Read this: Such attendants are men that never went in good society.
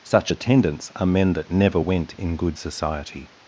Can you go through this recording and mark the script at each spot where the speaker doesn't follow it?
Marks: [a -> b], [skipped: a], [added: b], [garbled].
Such attendants are men that never went in good society.